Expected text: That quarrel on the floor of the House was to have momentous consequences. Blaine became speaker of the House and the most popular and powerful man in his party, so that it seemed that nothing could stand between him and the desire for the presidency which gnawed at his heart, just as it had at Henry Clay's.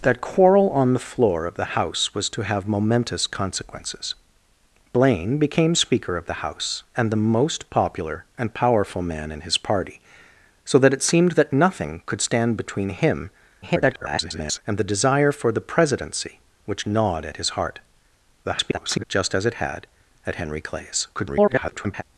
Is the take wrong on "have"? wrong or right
right